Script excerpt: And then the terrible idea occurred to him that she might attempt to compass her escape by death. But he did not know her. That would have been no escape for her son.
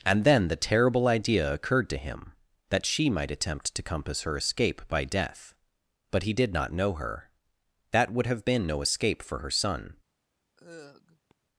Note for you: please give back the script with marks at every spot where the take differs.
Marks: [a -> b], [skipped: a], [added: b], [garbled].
And then the terrible idea occurred to him that she might attempt to compass her escape by death. But he did not know her. That would have been no escape for her son.